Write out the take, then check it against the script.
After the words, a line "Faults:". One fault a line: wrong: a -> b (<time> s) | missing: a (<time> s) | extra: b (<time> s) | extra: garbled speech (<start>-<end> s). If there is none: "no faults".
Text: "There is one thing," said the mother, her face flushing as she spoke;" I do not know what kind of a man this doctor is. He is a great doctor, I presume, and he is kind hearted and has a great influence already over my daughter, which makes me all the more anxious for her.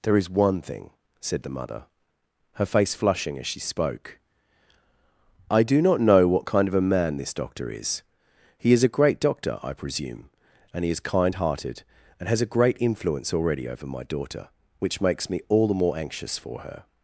"There is one thing," said the mother, her face flushing as she spoke;" I do not know what kind of a man this doctor is. He is a great doctor, I presume, and he is kind hearted and has a great influence already over my daughter, which makes me all the more anxious for her.
Faults:
no faults